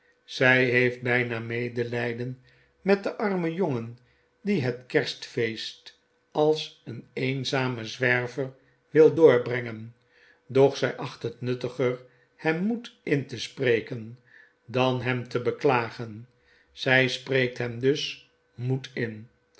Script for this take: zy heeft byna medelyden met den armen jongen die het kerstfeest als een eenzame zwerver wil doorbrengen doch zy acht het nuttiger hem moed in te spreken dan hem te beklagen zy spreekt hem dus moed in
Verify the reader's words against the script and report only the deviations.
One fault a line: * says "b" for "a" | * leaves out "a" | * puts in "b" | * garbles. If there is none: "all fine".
all fine